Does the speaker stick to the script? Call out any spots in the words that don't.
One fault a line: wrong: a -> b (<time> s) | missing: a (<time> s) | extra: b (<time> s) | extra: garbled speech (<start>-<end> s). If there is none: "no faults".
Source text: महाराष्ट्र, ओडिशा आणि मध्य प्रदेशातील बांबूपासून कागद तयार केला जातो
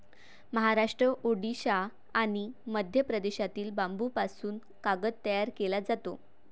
no faults